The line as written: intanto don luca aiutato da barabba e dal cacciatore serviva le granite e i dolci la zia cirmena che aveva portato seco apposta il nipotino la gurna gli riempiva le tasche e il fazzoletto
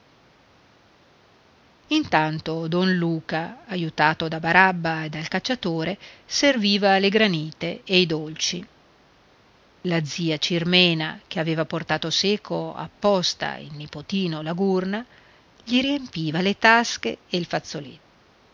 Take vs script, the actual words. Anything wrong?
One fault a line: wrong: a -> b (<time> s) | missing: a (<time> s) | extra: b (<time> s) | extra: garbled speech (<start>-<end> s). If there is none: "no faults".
no faults